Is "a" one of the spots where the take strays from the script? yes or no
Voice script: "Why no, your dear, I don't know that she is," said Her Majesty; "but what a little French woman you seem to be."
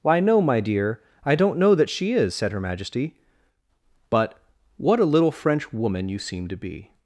no